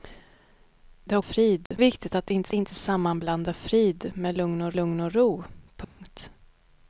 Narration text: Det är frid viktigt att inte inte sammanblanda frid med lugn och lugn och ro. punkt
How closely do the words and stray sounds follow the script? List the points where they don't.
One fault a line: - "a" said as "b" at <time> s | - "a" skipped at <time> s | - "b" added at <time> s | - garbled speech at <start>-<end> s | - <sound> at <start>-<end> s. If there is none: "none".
- dropout at 1.7-1.7 s
- dropout at 5.8-6.0 s